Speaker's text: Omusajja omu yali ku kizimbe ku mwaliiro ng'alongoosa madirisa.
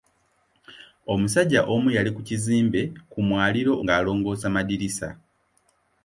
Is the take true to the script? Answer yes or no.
yes